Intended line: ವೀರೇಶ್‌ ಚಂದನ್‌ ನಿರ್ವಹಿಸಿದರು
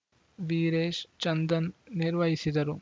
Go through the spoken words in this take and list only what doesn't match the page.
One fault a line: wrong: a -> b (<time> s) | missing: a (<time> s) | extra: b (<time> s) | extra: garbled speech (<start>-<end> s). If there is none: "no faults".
no faults